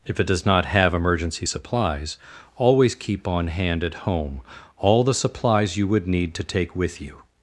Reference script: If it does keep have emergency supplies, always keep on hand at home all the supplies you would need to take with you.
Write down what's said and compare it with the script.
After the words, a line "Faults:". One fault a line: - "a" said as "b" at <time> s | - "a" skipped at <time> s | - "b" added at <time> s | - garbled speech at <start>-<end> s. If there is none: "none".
If it does not have emergency supplies, always keep on hand at home all the supplies you would need to take with you.
Faults:
- "keep" said as "not" at 0.5 s